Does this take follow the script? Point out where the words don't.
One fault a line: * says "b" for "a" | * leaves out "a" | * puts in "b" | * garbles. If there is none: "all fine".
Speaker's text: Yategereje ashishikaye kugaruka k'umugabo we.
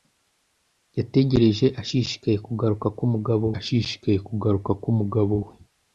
* puts in "ashishikaye kugaruka k'umugabo"